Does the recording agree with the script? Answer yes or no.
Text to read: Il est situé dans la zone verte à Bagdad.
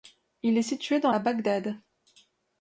no